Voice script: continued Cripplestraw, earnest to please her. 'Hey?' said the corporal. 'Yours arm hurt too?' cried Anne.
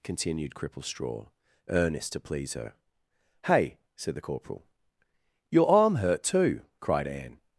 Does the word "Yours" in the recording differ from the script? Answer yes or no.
yes